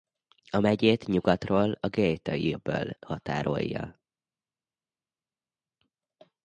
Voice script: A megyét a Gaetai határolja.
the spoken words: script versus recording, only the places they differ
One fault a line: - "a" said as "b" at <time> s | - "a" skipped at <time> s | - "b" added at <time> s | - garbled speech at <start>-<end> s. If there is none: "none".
- "nyugatról" added at 1.1 s
- "öböl" added at 2.5 s